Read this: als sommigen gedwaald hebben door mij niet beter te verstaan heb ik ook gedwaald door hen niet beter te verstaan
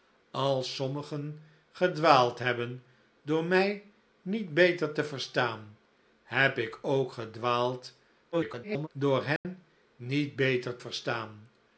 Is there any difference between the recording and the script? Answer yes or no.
yes